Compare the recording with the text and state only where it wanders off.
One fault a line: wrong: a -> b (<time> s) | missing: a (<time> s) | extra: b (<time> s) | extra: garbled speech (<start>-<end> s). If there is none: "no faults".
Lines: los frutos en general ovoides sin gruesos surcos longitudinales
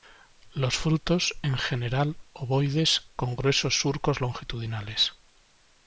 wrong: sin -> con (3.1 s)